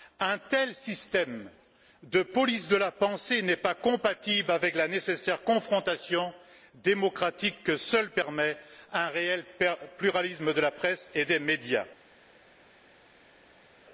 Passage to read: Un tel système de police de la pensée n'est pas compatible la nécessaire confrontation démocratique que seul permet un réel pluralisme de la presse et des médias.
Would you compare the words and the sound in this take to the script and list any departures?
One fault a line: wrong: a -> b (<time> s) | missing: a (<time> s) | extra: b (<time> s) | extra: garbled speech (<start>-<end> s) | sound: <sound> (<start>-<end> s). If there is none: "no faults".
extra: avec (4.5 s)